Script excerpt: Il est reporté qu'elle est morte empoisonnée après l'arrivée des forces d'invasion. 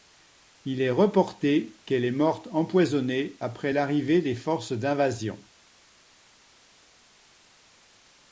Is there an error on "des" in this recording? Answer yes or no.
no